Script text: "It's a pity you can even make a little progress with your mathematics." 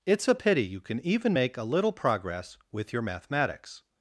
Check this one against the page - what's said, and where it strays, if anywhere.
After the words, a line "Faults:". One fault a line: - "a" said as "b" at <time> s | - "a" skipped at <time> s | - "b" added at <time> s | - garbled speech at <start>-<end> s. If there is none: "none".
"It's a pity you can even make a little progress with your mathematics."
Faults:
none